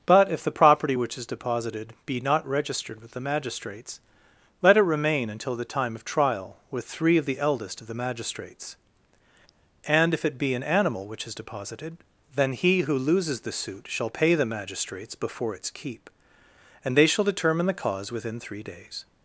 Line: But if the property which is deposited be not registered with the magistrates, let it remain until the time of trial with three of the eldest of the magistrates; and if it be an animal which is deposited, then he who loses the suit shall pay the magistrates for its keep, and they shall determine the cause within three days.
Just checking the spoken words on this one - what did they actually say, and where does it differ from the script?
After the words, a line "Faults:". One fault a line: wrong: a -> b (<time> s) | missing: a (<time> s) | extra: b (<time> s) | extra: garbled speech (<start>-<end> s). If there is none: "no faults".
But if the property which is deposited be not registered with the magistrates, let it remain until the time of trial with three of the eldest of the magistrates; and if it be an animal which is deposited, then he who loses the suit shall pay the magistrates before its keep, and they shall determine the cause within three days.
Faults:
wrong: for -> before (15.2 s)